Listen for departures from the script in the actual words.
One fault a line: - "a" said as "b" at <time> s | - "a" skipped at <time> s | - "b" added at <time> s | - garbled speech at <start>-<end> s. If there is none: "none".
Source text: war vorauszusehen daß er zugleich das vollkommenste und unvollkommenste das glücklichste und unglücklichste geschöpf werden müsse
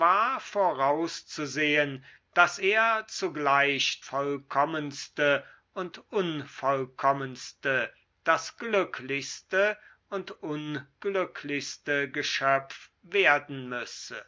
- "das" skipped at 4.0 s